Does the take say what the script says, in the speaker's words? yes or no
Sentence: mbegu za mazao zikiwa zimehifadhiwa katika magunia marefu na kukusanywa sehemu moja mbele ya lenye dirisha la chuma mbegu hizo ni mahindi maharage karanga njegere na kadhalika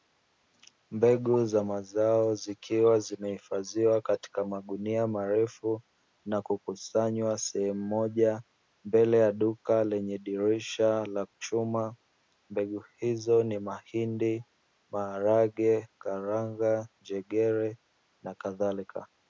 no